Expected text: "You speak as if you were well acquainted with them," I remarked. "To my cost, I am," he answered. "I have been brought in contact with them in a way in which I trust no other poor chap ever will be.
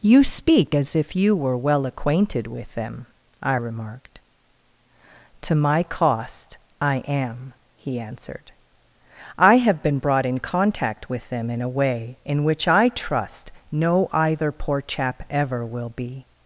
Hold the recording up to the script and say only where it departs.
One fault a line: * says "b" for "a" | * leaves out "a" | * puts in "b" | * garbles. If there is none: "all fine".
* says "either" for "other"